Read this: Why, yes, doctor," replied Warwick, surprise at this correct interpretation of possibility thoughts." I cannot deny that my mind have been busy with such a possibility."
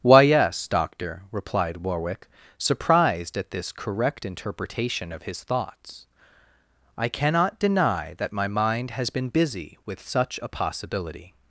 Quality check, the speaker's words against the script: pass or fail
fail